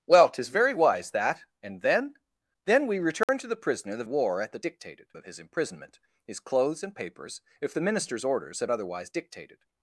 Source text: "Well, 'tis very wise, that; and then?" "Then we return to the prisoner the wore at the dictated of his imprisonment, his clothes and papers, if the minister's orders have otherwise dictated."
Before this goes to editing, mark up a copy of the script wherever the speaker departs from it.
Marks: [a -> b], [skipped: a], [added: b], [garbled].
"Well, 'tis very wise, that; and then?" "Then we return to the prisoner the wore at the dictated of his imprisonment, his clothes and papers, if the minister's orders have otherwise dictated."